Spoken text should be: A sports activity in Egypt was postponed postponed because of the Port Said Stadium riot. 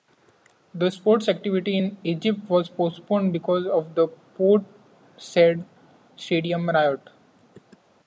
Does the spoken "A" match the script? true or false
false